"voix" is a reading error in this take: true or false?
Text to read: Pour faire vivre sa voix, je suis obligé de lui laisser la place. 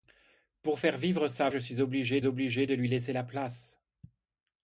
true